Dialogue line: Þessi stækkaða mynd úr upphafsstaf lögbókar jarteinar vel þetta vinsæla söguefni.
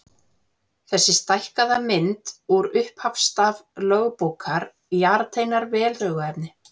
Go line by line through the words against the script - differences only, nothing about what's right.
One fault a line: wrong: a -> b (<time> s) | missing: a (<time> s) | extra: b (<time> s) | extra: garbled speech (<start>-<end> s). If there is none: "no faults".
missing: þetta vinsæla (5.9 s)